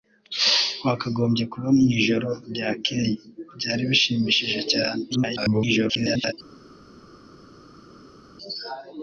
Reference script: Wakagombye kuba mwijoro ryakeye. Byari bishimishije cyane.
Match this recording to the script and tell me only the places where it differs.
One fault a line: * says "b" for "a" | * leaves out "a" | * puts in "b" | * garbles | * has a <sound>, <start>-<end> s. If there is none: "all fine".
* garbles